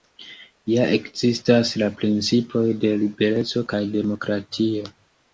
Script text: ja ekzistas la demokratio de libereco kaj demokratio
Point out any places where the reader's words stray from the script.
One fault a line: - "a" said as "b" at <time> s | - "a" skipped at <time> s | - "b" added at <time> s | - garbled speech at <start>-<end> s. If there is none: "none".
- "demokratio" said as "principoj" at 2.0 s